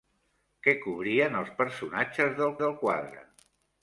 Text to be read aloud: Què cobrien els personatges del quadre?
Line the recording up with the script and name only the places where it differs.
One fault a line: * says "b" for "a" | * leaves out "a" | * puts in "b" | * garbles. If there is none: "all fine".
* puts in "del"